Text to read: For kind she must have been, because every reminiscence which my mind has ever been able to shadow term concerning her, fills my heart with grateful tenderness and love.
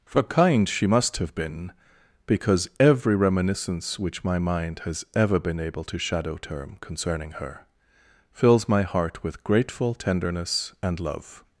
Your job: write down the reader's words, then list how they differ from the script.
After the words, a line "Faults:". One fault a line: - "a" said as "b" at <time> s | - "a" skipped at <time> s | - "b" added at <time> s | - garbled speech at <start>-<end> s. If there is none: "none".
For kind she must have been, because every reminiscence which my mind has ever been able to shadow term concerning her, fills my heart with grateful tenderness and love.
Faults:
none